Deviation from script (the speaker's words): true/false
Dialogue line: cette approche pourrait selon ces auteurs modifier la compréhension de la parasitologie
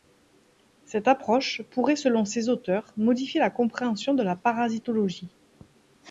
false